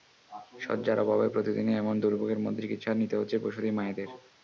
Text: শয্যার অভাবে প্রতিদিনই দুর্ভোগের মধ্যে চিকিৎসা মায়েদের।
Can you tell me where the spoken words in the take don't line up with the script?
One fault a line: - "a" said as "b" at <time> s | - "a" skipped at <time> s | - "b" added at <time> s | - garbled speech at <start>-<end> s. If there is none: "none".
- "এমন" added at 1.8 s
- "নিতে হচ্ছে প্রসূতি" added at 2.9 s